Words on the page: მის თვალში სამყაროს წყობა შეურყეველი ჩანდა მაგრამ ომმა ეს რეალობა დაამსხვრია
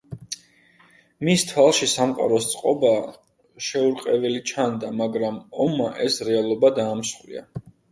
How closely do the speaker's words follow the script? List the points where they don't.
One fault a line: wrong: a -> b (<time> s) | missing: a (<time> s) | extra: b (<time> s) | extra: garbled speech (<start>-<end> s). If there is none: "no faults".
no faults